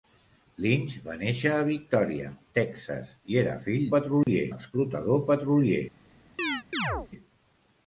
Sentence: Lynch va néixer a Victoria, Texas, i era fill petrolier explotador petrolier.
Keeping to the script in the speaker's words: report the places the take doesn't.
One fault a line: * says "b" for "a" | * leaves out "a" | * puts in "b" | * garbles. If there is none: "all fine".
all fine